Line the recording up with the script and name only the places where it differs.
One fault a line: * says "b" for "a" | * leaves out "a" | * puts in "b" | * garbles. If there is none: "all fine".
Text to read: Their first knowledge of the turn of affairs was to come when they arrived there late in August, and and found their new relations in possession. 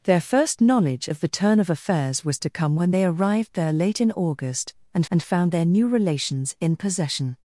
all fine